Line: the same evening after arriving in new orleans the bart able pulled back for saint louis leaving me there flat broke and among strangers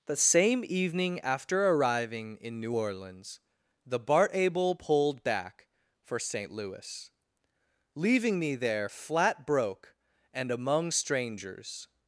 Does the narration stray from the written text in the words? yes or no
no